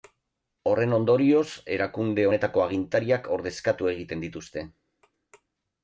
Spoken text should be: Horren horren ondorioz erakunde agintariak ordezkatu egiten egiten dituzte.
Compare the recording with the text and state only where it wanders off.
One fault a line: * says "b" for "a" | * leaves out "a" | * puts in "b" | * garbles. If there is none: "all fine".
* leaves out "horren"
* puts in "honetako"
* leaves out "egiten"